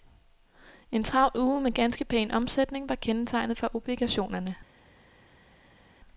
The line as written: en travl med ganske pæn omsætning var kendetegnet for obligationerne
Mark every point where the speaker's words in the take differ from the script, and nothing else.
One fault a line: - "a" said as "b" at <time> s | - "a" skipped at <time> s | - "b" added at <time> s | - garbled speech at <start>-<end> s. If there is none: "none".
- "uge" added at 1.4 s